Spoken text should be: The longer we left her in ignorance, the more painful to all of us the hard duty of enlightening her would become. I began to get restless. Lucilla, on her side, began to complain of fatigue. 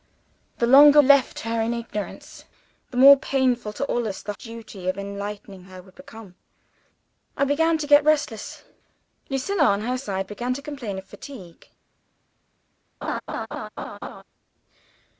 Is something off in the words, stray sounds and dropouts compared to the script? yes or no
yes